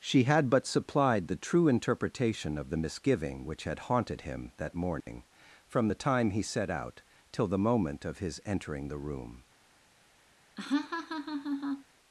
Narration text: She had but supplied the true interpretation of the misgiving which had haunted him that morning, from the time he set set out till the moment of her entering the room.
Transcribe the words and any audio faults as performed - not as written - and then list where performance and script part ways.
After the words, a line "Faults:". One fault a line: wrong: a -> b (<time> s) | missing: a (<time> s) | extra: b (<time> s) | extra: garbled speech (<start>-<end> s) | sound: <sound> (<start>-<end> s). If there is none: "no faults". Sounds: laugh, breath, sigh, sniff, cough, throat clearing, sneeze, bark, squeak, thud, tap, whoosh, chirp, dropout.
She had but supplied the true interpretation of the misgiving which had haunted him that morning, from the time he set out till the moment of his entering the room.
Faults:
sound: dropout (5.0-5.1 s)
missing: set (6.7 s)
wrong: her -> his (8.2 s)
sound: laugh (10.6-11.8 s)